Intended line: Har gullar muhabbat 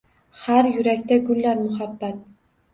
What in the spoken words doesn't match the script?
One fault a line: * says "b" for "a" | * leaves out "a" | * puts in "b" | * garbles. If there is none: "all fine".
* puts in "yurakda"